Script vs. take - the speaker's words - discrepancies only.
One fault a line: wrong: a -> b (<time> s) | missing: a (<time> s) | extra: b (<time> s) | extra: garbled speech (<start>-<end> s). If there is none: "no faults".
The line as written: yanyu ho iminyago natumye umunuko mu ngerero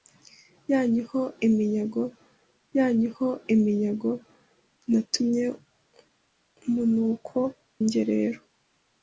extra: yanyu ho iminyago (2.8 s)
missing: mu (7.4 s)